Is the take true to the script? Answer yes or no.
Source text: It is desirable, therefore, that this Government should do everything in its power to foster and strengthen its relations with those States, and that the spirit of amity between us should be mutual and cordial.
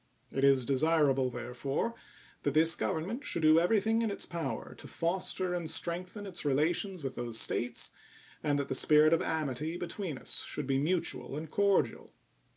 yes